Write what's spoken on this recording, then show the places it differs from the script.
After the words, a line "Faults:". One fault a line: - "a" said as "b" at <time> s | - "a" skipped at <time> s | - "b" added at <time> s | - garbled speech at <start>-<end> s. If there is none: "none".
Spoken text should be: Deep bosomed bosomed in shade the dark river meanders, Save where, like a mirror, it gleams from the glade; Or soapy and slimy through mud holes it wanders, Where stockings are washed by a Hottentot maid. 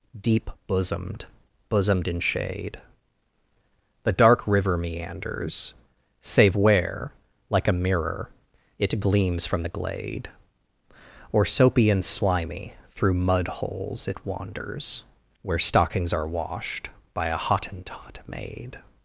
Deep bosomed bosomed in shade the dark river meanders, Save where, like a mirror, it gleams from the glade; Or soapy and slimy through mud holes it wanders, Where stockings are washed by a Hottentot maid.
Faults:
none